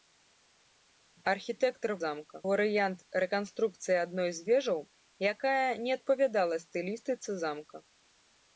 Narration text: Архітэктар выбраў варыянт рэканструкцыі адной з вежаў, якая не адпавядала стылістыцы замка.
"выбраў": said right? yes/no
no